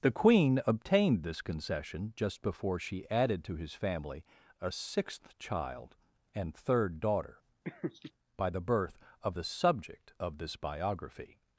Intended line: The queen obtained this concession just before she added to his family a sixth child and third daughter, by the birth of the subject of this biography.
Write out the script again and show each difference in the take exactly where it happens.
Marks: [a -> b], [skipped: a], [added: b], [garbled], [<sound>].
The queen obtained this concession just before she added to his family a sixth child and third daughter, [laugh] by the birth of the subject of this biography.